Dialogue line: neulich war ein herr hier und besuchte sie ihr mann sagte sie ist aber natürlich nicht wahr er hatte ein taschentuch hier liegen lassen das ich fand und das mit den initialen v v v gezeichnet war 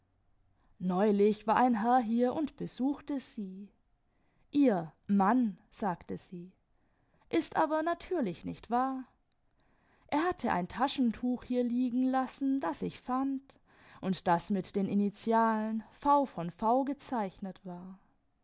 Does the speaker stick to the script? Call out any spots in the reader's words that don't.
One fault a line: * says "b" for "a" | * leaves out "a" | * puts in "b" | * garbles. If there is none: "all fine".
all fine